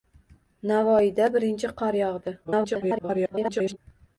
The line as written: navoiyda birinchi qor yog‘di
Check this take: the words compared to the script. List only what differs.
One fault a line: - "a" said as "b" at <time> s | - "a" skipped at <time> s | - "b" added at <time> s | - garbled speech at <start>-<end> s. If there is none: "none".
- garbled speech at 2.4-3.8 s